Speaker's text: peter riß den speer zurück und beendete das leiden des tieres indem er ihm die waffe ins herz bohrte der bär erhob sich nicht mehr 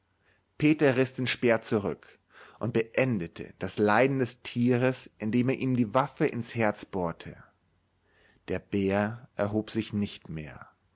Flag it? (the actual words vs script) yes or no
no